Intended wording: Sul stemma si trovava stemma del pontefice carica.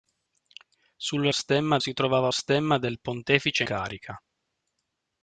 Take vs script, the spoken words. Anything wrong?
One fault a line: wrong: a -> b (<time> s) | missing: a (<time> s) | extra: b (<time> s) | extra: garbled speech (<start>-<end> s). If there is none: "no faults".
no faults